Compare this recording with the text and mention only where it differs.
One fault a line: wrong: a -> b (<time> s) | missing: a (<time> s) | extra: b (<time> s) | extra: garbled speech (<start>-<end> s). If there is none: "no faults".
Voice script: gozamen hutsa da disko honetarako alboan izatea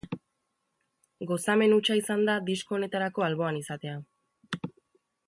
extra: izan (2.0 s)